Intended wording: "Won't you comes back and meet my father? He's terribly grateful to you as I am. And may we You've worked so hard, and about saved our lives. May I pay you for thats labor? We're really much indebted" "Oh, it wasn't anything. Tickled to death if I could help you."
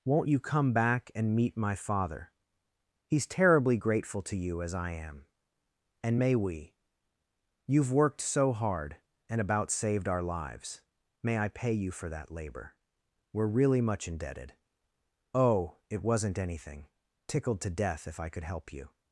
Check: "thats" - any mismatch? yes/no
yes